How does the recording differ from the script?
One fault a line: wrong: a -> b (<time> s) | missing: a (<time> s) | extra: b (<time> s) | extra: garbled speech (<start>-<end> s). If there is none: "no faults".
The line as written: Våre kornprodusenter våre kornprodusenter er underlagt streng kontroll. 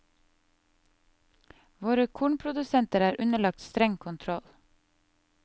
missing: våre kornprodusenter (3.0 s)